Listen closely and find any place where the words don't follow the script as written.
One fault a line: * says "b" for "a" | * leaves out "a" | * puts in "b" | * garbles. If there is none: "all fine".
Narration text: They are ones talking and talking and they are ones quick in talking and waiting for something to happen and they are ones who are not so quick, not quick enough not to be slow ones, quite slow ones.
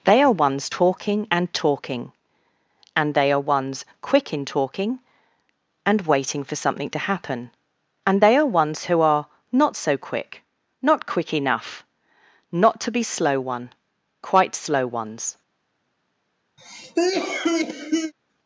* says "one" for "ones"